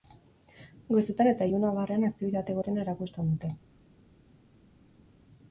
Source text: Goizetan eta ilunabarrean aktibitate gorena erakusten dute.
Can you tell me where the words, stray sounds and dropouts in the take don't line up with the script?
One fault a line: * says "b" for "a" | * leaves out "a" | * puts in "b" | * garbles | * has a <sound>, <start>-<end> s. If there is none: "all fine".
all fine